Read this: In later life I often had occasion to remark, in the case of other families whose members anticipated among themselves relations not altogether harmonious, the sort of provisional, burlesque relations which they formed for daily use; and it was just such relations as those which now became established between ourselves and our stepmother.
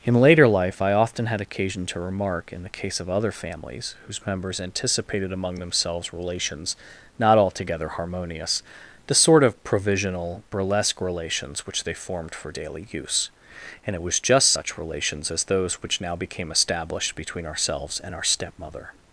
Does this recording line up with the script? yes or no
yes